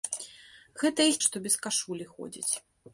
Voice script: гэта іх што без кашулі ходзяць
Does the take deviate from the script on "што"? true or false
false